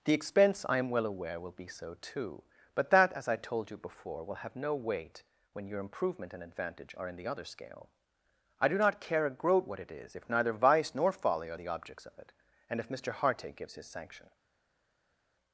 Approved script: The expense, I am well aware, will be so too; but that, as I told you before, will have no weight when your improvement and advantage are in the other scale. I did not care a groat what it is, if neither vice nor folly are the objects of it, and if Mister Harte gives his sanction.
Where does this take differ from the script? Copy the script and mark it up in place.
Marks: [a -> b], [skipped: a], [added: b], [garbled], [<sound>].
The expense, I am well aware, will be so too; but that, as I told you before, will have no weight when your improvement and advantage are in the other scale. I [did -> do] not care a groat what it is, if neither vice nor folly are the objects of it, and if Mister Harte gives his sanction.